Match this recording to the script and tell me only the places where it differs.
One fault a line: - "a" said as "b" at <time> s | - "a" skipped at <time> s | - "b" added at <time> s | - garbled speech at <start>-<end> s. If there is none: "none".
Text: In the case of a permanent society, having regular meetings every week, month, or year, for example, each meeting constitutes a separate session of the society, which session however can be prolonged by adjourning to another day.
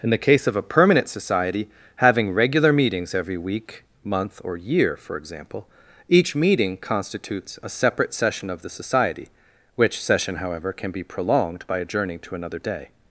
none